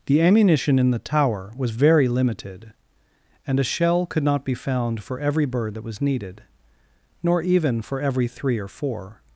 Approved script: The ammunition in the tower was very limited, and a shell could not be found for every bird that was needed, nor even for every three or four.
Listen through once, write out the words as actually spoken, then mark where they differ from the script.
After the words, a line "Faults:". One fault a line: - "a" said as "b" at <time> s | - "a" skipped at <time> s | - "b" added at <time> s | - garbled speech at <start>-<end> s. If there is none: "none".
The ammunition in the tower was very limited, and a shell could not be found for every bird that was needed, nor even for every three or four.
Faults:
none